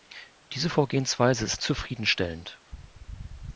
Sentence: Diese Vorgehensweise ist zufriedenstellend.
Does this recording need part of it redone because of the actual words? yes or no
no